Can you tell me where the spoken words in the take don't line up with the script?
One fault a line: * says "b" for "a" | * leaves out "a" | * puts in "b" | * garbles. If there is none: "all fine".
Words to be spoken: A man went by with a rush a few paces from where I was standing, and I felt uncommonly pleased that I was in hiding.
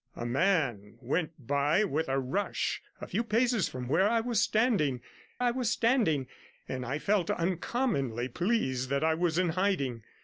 * puts in "I was standing"